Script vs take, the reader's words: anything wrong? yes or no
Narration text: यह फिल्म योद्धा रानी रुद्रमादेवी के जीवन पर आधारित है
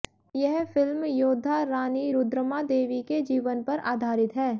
no